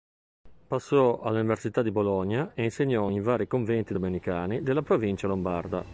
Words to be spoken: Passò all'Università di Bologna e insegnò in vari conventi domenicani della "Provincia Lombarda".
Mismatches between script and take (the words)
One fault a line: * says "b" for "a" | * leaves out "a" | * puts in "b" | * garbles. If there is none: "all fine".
all fine